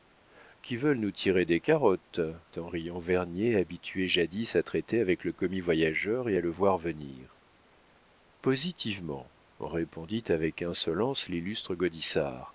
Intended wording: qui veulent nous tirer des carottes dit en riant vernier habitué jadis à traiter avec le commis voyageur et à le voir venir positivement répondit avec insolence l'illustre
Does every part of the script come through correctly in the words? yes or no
no